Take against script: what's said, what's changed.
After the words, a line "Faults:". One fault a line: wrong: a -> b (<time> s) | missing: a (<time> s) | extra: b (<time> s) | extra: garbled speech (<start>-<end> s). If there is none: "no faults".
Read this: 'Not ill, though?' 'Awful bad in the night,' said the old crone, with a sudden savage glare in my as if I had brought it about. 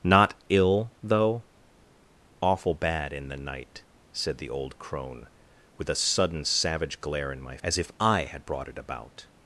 'Not ill, though?' 'Awful bad in the night,' said the old crone, with a sudden savage glare in my as if I had brought it about.
Faults:
no faults